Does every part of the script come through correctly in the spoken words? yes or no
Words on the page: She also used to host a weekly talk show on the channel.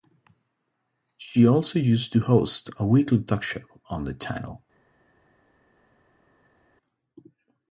yes